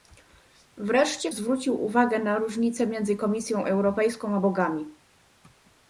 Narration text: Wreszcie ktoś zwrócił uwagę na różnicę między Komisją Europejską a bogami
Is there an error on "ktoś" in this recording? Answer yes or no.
yes